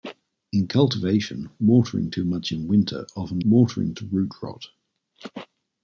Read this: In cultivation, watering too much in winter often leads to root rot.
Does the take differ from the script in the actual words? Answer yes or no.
yes